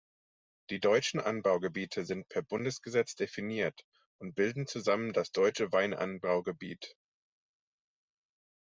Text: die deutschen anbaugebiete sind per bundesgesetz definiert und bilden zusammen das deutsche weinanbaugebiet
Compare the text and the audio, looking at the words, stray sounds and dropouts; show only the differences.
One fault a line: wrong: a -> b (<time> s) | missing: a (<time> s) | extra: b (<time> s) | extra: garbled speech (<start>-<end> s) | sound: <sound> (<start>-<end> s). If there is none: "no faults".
no faults